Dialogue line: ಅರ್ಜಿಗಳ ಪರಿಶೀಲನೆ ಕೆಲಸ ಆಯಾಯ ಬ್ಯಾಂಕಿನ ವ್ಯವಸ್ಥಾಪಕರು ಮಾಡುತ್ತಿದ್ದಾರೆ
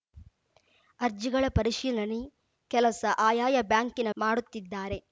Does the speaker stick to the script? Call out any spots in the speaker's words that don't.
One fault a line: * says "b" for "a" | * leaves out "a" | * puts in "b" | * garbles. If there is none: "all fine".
* leaves out "ವ್ಯವಸ್ಥಾಪಕರು"